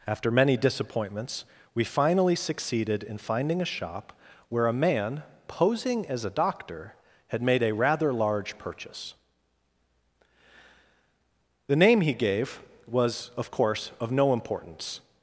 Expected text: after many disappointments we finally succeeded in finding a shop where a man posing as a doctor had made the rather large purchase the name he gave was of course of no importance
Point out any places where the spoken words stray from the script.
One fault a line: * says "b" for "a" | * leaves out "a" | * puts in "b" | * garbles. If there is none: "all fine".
* says "a" for "the"